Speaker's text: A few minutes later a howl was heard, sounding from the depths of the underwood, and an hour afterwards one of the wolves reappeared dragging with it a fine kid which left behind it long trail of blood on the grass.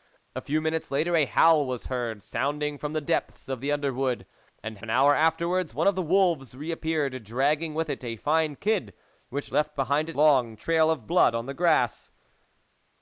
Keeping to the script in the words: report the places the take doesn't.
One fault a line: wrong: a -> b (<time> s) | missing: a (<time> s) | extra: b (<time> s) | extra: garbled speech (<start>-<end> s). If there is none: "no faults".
no faults